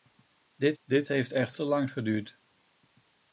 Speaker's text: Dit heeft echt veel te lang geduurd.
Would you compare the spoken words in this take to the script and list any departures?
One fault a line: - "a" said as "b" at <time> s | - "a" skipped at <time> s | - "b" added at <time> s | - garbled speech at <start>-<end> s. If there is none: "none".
- "dit" added at 0.8 s
- "veel" skipped at 1.6 s